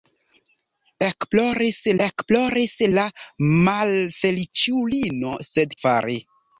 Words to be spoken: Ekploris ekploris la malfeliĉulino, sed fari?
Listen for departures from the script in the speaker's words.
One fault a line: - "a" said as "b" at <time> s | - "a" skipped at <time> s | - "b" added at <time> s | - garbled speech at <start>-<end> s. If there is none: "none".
none